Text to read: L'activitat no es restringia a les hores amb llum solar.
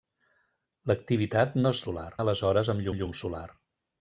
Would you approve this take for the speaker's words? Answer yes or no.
no